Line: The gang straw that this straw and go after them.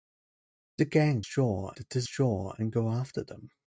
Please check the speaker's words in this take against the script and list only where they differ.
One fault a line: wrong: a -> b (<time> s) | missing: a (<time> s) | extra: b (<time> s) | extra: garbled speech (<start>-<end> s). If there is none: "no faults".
no faults